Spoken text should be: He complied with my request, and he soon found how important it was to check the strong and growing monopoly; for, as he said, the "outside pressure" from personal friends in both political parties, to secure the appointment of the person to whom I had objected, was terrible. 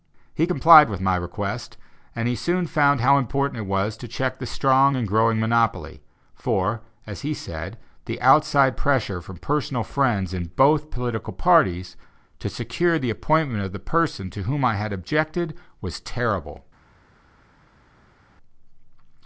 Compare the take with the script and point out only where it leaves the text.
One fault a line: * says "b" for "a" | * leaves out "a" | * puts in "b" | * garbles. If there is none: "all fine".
all fine